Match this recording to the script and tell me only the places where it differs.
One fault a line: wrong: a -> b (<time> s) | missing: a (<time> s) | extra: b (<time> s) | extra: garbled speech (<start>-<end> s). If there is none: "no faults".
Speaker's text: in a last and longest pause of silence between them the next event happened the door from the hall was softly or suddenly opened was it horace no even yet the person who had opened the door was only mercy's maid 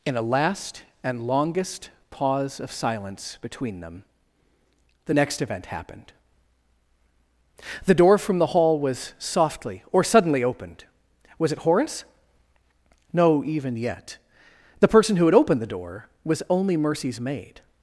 no faults